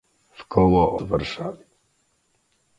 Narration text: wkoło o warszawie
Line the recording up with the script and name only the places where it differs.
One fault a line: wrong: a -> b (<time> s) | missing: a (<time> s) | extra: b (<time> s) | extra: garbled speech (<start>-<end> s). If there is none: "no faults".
no faults